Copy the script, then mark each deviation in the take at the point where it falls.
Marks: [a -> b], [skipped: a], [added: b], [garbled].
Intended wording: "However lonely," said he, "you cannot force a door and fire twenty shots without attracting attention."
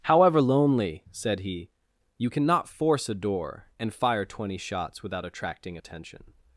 "However lonely," said he, "you cannot force a door and fire twenty shots without attracting attention."